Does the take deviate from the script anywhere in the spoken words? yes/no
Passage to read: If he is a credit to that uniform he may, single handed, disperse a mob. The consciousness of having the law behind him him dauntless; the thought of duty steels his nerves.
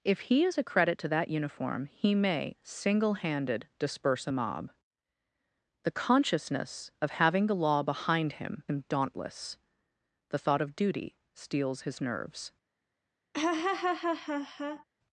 no